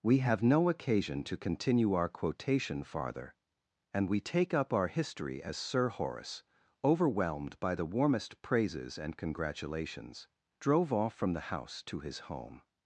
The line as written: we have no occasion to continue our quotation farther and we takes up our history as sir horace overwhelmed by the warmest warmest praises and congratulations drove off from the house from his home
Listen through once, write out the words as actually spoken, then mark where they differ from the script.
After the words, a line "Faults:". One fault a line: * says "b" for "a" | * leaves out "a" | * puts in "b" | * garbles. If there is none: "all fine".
we have no occasion to continue our quotation farther and we take up our history as sir horace overwhelmed by the warmest praises and congratulations drove off from the house to his home
Faults:
* says "take" for "takes"
* leaves out "warmest"
* says "to" for "from"